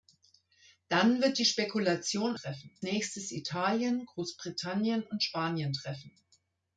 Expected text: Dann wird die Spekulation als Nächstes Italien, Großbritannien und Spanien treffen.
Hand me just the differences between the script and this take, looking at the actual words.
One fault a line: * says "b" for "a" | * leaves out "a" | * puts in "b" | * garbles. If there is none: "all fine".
* says "treffen" for "als"